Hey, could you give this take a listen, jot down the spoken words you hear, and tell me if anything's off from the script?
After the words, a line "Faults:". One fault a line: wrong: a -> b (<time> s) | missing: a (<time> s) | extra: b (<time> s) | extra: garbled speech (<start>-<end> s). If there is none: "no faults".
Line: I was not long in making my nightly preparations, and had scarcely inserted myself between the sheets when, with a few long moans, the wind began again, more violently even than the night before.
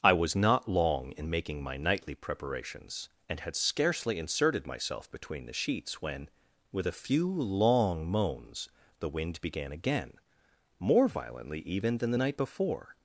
I was not long in making my nightly preparations, and had scarcely inserted myself between the sheets when, with a few long moans, the wind began again, more violently even than the night before.
Faults:
no faults